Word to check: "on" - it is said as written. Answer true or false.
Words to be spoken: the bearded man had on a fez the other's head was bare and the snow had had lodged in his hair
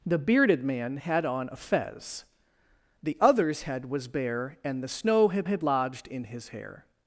true